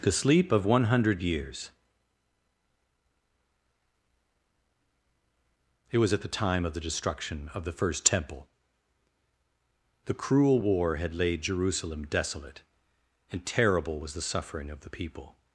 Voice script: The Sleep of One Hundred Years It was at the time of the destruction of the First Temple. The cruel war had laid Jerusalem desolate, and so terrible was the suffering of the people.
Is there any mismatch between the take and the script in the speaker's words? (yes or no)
yes